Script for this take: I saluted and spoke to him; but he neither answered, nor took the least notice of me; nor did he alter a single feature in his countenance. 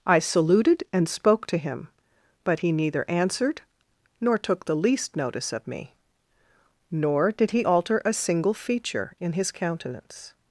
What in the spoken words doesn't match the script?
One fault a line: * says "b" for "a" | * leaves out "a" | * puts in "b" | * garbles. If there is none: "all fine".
all fine